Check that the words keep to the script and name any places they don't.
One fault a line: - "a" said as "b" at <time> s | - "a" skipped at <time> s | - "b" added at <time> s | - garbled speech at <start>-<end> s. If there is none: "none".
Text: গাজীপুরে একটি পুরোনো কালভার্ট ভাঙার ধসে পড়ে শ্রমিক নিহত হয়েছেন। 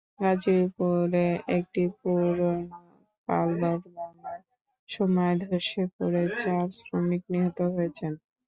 - "সময়" added at 4.9 s
- "চার" added at 6.4 s